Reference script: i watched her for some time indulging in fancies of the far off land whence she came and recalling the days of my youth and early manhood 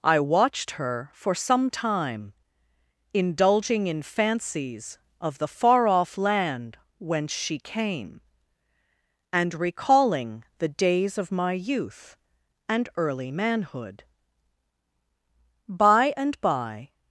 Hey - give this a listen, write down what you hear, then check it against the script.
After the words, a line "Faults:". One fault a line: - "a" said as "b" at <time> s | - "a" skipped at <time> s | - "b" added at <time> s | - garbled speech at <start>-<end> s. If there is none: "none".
i watched her for some time indulging in fancies of the far off land whence she came and recalling the days of my youth and early manhood by and by
Faults:
- "by and by" added at 15.7 s